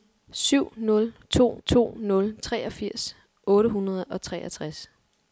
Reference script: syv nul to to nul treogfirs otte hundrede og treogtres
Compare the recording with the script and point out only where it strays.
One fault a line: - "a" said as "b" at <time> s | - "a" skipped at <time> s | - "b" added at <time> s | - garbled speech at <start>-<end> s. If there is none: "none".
none